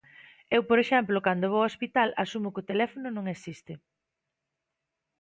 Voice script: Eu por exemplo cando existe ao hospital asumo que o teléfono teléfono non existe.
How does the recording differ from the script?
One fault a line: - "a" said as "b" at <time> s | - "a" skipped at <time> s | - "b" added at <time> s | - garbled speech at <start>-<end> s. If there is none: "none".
- "existe" said as "vou" at 1.5 s
- "teléfono" skipped at 3.1 s